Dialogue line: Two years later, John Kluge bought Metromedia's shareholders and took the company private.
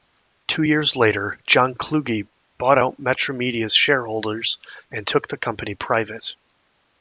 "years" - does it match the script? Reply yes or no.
yes